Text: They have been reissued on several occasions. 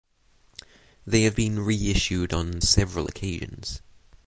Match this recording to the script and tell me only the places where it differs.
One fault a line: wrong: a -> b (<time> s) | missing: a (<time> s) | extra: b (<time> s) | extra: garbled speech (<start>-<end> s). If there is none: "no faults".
no faults